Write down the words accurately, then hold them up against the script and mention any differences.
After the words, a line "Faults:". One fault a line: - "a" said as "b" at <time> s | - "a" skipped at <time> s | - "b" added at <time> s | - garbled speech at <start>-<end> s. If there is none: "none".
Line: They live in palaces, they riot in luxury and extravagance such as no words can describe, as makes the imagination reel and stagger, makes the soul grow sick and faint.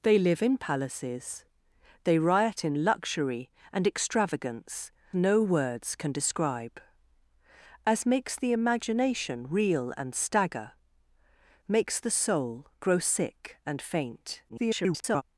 They live in palaces, they riot in luxury and extravagance no words can describe, as makes the imagination reel and stagger, makes the soul grow sick and faint. [garbled]
Faults:
- "such as" skipped at 4.9 s
- garbled speech at 14.5-15.2 s